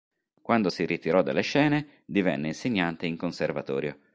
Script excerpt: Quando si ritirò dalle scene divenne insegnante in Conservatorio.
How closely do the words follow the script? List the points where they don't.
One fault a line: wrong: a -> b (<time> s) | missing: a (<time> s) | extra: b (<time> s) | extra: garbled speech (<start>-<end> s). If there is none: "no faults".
no faults